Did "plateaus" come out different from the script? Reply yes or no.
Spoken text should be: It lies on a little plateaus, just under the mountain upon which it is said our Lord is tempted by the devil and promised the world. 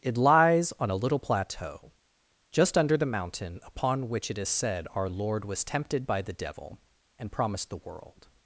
yes